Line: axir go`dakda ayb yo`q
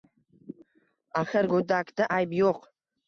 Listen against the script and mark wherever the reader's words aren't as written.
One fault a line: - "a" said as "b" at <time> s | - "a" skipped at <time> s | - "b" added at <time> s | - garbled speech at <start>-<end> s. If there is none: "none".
none